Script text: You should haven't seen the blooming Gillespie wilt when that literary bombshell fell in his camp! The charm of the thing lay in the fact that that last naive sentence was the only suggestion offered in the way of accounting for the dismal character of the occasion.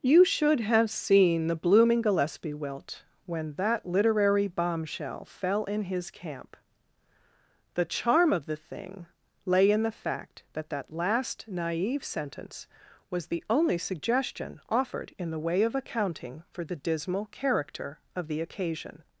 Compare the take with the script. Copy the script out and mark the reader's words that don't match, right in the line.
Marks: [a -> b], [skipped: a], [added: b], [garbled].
You should [haven't -> have] seen the blooming Gillespie wilt when that literary bombshell fell in his camp! The charm of the thing lay in the fact that that last naive sentence was the only suggestion offered in the way of accounting for the dismal character of the occasion.